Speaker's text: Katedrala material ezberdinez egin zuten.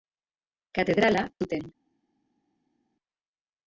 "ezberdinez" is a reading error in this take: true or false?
true